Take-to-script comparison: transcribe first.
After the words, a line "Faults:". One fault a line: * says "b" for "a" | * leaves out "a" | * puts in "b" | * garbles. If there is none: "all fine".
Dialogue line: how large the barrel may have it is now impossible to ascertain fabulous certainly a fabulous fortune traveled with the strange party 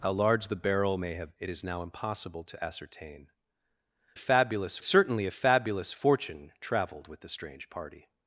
how large the barrel may have it is now impossible to ascertain fabulous certainly a fabulous fortune traveled with the strange party
Faults:
all fine